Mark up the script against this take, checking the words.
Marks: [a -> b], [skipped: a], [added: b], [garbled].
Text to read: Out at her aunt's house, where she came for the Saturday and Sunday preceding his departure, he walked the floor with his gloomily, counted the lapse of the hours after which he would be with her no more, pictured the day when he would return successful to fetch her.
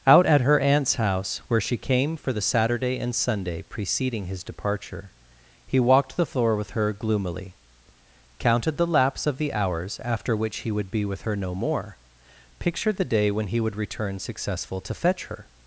Out at her aunt's house, where she came for the Saturday and Sunday preceding his departure, he walked the floor with [his -> her] gloomily, counted the lapse of the hours after which he would be with her no more, pictured the day when he would return successful to fetch her.